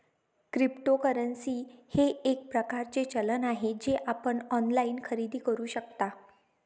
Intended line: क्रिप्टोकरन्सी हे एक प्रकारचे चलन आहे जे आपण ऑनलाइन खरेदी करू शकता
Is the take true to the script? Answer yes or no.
yes